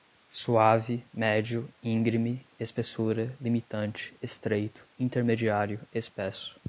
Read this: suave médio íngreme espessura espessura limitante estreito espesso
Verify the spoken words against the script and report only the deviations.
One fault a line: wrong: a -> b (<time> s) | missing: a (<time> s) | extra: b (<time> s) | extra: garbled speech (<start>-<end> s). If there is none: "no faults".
missing: espessura (3.4 s)
extra: intermediário (5.0 s)